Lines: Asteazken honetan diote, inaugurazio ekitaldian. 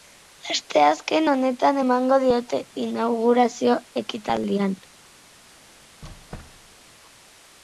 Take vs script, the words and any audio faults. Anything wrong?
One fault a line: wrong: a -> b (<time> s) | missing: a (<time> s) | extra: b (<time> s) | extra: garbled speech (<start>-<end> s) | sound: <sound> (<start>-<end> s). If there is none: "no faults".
extra: emango (1.8 s)
sound: squeak (6.0-6.8 s)